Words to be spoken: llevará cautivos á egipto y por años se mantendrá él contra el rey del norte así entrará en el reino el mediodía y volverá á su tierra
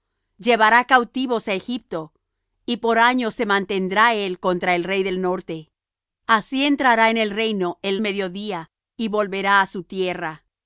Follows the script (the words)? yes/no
yes